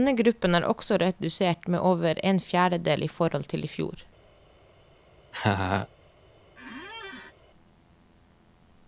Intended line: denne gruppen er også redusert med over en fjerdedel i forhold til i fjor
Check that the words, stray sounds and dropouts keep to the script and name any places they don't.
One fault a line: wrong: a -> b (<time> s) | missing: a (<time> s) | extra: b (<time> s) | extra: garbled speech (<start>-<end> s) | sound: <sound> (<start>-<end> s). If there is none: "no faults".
sound: laugh (5.3-5.9 s)
sound: squeak (6.6-7.3 s)